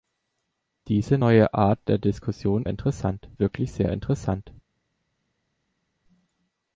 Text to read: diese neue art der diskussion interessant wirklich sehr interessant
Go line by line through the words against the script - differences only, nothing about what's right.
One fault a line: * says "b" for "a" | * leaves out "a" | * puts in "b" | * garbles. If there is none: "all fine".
all fine